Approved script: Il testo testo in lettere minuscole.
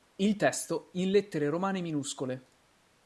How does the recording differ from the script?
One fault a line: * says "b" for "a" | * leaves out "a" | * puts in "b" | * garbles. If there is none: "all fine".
* leaves out "testo"
* puts in "romane"